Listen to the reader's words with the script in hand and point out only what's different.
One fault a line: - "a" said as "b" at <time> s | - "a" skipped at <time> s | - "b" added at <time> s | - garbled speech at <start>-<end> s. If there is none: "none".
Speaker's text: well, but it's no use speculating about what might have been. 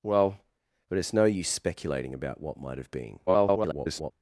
- garbled speech at 3.3-4.1 s